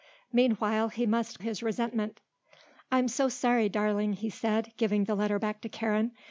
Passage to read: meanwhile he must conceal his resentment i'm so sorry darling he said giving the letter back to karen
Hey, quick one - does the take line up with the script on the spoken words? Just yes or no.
no